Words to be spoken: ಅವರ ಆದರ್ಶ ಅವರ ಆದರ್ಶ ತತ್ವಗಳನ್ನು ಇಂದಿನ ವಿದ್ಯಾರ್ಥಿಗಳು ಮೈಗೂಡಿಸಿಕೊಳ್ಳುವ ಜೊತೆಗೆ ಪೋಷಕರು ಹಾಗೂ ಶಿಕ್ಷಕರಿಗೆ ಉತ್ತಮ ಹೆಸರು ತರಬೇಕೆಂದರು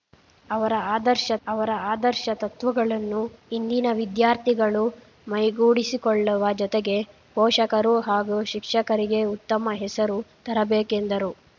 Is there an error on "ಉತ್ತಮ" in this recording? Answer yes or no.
no